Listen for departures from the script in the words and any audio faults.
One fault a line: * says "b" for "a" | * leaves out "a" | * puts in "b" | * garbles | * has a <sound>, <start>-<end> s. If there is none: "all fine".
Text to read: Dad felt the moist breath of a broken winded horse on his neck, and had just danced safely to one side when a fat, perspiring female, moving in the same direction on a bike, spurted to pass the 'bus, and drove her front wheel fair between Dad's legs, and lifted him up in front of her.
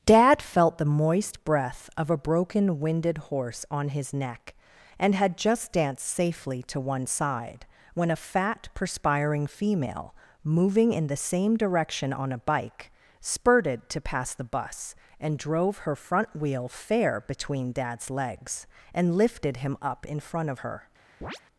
* has a chirp, 21.2-21.4 s